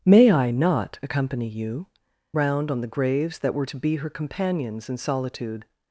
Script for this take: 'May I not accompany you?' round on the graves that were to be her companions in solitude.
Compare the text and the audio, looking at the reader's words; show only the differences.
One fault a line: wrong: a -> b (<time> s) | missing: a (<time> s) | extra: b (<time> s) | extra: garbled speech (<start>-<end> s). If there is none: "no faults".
no faults